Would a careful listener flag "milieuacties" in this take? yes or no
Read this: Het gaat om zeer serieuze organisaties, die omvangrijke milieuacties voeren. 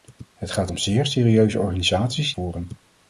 yes